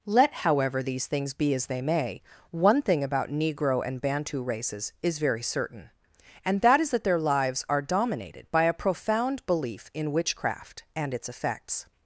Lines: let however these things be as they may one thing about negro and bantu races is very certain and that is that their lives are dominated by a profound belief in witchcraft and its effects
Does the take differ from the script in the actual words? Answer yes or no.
no